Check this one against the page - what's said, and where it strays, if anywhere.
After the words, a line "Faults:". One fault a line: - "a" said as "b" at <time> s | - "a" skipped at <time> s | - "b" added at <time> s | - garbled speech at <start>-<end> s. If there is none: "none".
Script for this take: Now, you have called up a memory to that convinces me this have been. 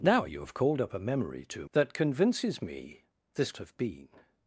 Now, you have called up a memory to that convinces me this have been.
Faults:
none